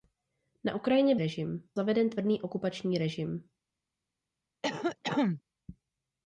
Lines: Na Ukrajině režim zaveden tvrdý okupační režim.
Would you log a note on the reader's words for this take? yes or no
no